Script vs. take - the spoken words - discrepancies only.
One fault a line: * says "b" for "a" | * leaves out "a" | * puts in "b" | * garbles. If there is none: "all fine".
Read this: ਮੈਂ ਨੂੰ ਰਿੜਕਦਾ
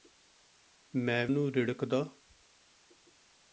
all fine